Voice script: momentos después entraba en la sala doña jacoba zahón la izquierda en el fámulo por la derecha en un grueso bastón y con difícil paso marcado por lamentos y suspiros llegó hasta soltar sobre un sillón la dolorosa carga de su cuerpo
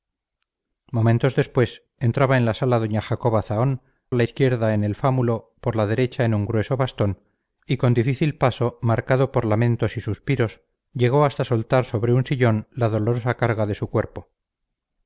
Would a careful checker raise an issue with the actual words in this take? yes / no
no